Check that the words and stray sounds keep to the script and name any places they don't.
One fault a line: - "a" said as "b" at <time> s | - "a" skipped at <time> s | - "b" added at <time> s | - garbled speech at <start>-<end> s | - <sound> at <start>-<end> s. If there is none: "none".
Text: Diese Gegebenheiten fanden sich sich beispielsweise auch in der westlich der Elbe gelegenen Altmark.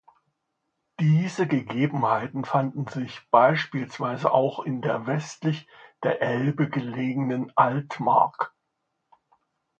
- "sich" skipped at 3.2 s